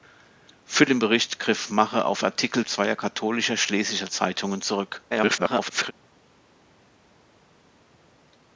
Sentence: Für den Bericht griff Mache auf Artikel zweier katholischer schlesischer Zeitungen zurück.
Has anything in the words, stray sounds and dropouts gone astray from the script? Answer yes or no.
yes